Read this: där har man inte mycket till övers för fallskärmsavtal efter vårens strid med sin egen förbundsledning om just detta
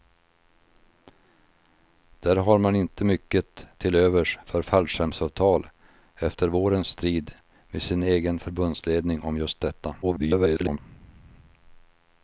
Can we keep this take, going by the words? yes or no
no